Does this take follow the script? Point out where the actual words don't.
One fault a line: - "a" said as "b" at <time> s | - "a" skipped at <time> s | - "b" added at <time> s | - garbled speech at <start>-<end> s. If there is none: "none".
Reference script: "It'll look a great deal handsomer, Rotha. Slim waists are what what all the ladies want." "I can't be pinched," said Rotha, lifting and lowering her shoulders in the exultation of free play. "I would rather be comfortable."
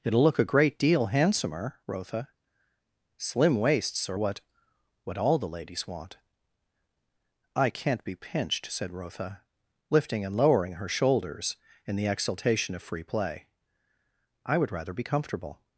none